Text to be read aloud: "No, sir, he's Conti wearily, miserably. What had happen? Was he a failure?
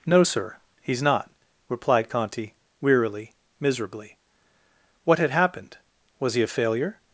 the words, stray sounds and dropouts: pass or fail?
fail